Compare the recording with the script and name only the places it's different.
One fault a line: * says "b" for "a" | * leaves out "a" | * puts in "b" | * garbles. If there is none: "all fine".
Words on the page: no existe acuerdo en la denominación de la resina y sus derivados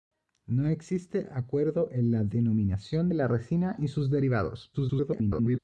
* garbles